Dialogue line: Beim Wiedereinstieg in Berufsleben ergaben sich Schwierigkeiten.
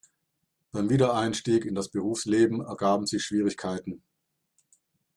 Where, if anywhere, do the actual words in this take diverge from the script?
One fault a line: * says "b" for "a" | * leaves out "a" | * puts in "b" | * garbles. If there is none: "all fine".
* puts in "das"